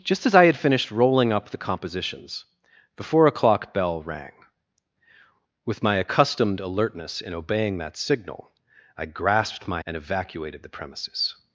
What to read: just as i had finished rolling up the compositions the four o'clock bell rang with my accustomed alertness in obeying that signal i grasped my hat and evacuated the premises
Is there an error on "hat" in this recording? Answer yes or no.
yes